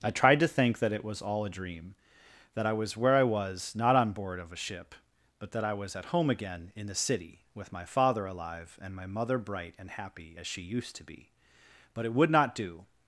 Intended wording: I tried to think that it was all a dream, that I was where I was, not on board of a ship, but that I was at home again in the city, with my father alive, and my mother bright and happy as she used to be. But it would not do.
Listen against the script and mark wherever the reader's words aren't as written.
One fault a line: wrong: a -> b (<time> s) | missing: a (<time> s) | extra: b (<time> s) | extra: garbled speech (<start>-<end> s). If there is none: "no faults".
no faults